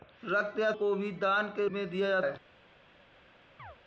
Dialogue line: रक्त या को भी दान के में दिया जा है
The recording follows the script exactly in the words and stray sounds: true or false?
false